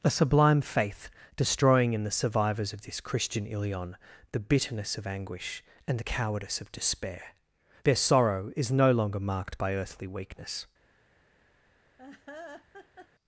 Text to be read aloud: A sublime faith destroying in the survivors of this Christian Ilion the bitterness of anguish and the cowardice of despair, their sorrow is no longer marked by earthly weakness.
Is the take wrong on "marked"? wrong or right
right